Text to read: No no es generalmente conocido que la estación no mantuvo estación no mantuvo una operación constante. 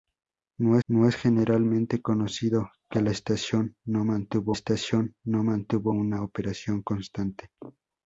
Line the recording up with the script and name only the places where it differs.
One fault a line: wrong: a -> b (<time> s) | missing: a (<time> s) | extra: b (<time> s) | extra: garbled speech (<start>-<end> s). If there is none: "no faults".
no faults